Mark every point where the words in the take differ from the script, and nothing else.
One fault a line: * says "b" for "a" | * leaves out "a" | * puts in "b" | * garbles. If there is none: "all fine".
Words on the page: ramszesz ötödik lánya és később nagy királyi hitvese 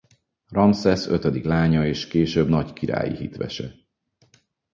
all fine